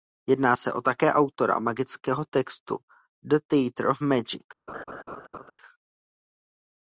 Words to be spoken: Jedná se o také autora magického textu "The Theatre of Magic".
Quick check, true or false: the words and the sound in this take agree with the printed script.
false